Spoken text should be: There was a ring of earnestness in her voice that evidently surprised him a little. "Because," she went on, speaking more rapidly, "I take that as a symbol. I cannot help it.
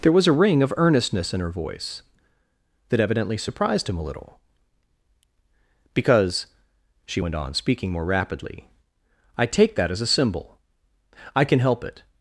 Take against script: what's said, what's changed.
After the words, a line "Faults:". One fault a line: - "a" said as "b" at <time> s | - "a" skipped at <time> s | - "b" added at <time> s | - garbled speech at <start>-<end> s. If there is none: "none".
There was a ring of earnestness in her voice that evidently surprised him a little. "Because," she went on, speaking more rapidly, "I take that as a symbol. I can help it.
Faults:
- "cannot" said as "can" at 11.4 s